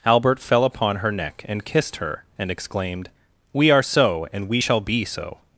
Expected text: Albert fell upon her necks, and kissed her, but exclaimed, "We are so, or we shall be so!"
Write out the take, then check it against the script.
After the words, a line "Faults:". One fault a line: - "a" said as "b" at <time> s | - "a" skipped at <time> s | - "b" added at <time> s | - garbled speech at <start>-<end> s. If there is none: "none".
Albert fell upon her neck, and kissed her, and exclaimed, "We are so, and we shall be so!"
Faults:
- "necks" said as "neck" at 1.1 s
- "but" said as "and" at 2.4 s
- "or" said as "and" at 4.3 s